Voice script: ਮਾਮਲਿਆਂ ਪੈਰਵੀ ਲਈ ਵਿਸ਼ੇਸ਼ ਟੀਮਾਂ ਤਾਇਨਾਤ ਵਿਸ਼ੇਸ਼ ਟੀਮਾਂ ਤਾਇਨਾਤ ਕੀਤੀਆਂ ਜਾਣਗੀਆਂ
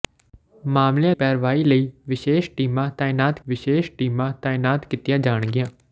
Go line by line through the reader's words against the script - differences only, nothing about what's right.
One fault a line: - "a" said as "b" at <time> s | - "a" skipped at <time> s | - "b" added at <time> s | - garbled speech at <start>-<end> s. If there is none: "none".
none